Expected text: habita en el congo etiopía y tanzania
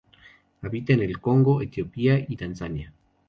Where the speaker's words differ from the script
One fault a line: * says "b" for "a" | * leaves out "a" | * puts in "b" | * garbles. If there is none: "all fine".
all fine